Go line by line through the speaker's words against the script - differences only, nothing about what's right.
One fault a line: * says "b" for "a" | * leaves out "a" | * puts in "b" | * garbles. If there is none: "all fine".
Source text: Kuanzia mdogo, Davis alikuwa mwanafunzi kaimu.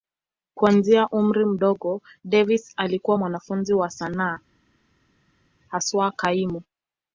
* puts in "umri"
* puts in "wa sanaa haswa"